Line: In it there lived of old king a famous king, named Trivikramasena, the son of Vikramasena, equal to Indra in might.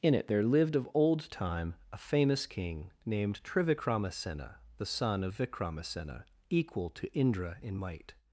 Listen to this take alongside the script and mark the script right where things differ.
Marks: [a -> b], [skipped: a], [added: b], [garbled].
In it there lived of old [king -> time] a famous king, named Trivikramasena, the son of Vikramasena, equal to Indra in might.